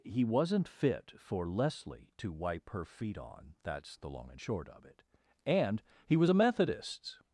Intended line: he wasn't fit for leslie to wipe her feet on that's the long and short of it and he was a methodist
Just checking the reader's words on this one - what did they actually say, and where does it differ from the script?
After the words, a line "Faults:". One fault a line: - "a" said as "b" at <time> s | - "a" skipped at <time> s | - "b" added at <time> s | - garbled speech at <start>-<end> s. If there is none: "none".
he wasn't fit for leslie to wipe her feet on that's the long and short of it and he was a methodist
Faults:
none